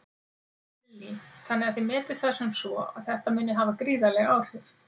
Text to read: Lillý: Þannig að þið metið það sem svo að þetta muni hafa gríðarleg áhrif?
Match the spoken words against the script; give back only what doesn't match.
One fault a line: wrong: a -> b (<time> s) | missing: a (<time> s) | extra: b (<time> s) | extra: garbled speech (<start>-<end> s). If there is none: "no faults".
no faults